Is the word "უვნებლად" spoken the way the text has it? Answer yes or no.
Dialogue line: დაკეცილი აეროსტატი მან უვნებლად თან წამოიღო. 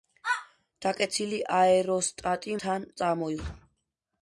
no